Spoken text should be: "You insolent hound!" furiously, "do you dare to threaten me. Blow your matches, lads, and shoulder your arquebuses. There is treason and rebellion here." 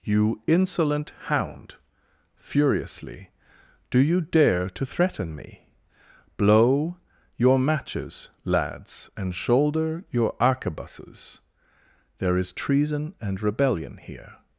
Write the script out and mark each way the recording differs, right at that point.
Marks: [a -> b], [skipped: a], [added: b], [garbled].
"You insolent hound!" furiously, "do you dare to threaten me. Blow your matches, lads, and shoulder your arquebuses. There is treason and rebellion here."